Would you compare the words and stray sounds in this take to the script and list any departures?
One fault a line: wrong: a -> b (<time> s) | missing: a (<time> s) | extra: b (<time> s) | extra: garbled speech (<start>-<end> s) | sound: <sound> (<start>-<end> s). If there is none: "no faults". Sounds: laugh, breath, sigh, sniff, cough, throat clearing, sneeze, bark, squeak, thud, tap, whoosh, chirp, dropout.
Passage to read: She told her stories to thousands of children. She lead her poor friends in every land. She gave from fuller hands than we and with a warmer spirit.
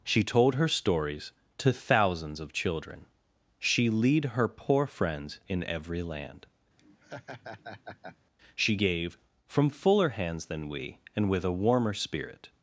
sound: laugh (6.8-8.2 s)